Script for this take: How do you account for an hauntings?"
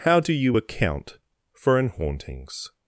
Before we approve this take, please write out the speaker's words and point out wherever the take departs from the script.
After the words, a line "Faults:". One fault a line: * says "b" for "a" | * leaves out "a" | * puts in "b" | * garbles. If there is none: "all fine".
How do you account for an hauntings?"
Faults:
all fine